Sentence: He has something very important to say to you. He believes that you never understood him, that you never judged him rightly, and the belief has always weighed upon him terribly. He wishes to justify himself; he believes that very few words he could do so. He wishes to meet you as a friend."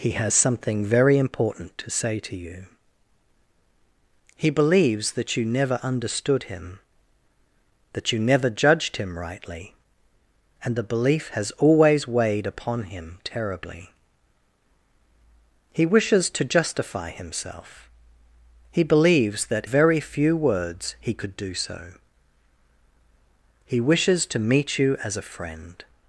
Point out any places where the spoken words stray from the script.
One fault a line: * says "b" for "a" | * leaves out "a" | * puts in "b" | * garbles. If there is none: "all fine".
all fine